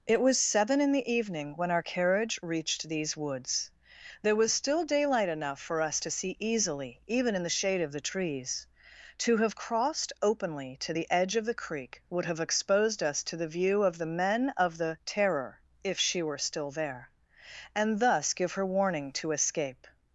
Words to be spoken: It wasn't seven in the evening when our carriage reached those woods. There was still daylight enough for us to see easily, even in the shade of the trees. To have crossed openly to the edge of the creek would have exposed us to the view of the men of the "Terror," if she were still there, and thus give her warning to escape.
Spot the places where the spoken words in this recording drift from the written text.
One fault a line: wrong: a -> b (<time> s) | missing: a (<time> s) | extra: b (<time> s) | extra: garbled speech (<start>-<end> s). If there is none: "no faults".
wrong: wasn't -> was (0.2 s)
wrong: those -> these (2.9 s)